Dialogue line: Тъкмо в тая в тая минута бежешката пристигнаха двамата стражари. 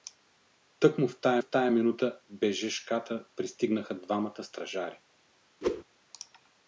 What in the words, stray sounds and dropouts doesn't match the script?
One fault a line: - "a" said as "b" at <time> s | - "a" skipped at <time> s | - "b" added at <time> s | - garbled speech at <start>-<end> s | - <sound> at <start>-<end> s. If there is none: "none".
- whoosh at 5.6-5.8 s